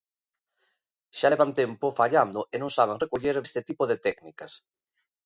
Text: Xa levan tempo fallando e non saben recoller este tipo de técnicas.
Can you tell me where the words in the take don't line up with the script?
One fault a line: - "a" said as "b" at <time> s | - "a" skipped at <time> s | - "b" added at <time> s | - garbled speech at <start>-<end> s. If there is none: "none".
none